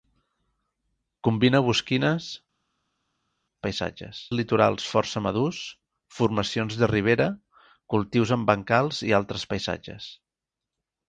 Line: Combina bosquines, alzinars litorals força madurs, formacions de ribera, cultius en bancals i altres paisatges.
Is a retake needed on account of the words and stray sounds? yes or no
yes